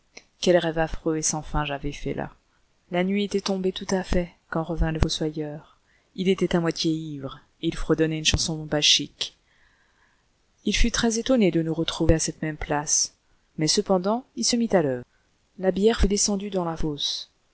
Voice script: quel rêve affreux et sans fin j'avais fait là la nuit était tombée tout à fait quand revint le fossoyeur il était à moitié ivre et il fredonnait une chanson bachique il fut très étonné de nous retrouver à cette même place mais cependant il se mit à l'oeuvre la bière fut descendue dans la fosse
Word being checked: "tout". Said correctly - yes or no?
yes